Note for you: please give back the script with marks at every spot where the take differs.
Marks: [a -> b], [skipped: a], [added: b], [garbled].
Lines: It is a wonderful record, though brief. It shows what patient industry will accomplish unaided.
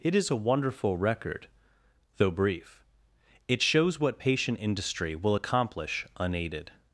It is a wonderful record, though brief. It shows what patient industry will accomplish unaided.